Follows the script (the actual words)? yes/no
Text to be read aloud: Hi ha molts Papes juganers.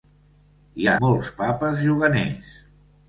yes